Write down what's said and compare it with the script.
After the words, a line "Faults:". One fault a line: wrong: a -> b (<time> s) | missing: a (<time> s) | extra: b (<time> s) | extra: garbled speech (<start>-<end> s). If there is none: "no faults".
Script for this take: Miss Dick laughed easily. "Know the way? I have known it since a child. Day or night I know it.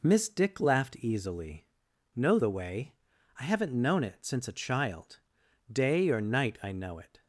Miss Dick laughed easily. "Know the way? I haven't known it since a child. Day or night I know it.
Faults:
wrong: have -> haven't (3.4 s)